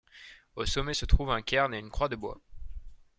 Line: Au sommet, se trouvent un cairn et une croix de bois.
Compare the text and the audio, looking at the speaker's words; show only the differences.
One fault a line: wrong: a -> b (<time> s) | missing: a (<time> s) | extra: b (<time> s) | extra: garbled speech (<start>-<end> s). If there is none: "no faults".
no faults